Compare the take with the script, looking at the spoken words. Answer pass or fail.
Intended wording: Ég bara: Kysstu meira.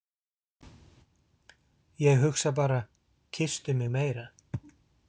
fail